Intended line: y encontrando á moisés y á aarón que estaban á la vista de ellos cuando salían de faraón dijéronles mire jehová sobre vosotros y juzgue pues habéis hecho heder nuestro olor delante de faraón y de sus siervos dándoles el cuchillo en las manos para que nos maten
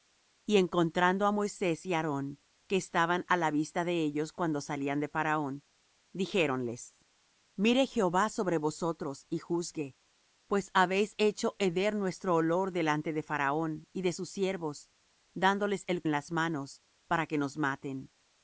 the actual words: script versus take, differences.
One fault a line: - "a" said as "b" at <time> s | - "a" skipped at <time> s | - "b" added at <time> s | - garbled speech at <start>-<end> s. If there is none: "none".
- "cuchillo" skipped at 16.0 s